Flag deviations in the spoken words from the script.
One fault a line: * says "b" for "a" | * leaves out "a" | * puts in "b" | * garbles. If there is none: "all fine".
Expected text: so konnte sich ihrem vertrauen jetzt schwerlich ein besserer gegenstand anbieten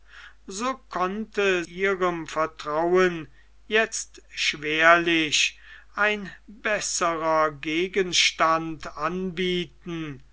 * leaves out "sich"